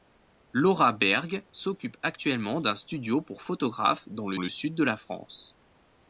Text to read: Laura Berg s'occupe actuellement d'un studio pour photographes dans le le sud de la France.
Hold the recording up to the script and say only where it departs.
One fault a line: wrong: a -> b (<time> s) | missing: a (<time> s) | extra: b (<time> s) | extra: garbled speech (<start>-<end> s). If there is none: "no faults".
no faults